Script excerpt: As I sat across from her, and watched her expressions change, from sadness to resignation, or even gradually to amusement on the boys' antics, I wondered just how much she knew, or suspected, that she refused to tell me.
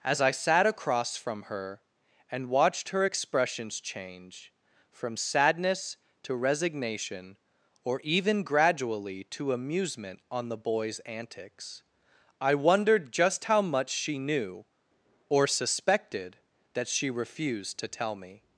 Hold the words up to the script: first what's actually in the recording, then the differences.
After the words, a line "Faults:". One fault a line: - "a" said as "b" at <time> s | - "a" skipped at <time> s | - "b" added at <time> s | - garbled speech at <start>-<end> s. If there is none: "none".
As I sat across from her, and watched her expressions change, from sadness to resignation, or even gradually to amusement on the boys' antics, I wondered just how much she knew, or suspected, that she refused to tell me.
Faults:
none